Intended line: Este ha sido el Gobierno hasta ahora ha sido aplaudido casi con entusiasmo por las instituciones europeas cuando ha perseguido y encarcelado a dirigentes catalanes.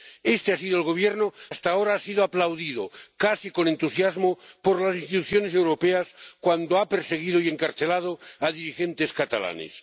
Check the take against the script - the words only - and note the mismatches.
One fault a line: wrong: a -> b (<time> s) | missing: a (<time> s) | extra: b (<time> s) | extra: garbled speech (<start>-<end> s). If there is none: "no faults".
no faults